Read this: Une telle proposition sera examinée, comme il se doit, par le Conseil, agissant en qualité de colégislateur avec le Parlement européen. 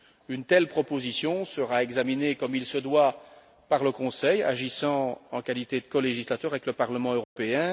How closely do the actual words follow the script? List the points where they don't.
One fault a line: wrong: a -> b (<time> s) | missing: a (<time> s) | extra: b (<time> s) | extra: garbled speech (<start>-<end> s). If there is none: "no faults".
no faults